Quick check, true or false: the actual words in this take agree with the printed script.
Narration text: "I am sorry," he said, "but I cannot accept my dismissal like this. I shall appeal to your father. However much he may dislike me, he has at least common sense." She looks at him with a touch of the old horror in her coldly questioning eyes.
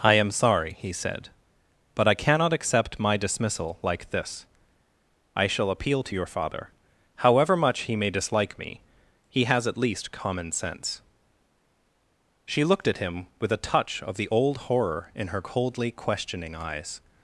false